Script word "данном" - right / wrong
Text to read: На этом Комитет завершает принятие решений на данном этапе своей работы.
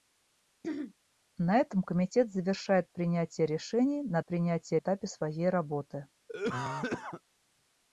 wrong